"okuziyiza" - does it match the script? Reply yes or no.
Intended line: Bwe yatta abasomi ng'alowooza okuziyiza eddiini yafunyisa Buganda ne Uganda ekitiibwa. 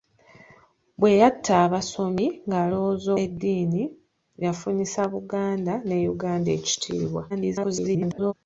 no